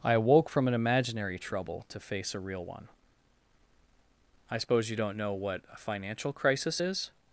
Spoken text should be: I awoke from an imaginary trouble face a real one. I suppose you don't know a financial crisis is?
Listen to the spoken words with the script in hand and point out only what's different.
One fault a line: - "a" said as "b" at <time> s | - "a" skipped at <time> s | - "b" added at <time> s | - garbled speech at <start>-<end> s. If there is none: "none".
- "to" added at 1.9 s
- "what" added at 5.3 s